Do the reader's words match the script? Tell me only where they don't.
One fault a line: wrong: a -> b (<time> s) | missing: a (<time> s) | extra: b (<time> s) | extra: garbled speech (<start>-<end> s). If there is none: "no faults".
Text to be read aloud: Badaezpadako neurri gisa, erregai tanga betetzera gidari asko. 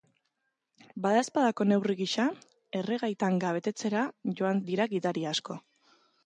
extra: joan dira (4.4 s)